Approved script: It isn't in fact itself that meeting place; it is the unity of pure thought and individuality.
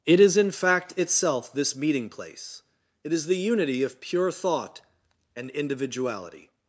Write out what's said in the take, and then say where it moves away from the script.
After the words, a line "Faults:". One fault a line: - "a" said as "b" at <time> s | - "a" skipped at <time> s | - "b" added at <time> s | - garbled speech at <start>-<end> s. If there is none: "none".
It is in fact itself this meeting place; it is the unity of pure thought and individuality.
Faults:
- "isn't" said as "is" at 0.2 s
- "that" said as "this" at 1.5 s